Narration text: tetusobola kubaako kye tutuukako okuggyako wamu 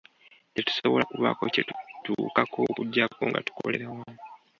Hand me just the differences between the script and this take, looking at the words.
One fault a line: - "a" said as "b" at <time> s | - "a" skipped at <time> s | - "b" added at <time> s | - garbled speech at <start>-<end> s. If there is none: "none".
- "nga tukolera" added at 3.3 s